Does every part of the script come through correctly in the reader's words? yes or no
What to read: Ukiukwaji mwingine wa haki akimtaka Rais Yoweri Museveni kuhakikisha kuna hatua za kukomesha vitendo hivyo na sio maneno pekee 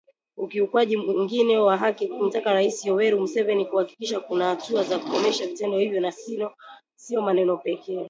yes